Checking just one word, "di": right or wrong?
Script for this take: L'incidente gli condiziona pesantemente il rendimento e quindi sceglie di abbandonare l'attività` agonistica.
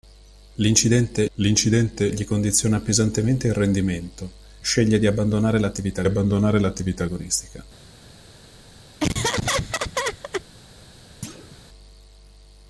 wrong